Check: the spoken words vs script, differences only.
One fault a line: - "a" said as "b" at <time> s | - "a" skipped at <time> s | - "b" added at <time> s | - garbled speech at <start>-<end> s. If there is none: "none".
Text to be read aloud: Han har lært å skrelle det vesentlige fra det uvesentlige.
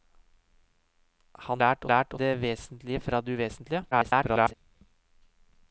- "har" skipped at 1.6 s
- "skrelle" said as "lært" at 1.9 s
- garbled speech at 3.9-4.5 s